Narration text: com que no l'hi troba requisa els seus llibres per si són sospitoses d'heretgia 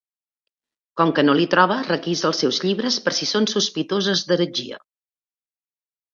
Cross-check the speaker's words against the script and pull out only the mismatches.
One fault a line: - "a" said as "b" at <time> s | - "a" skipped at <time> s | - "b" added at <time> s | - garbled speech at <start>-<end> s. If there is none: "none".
none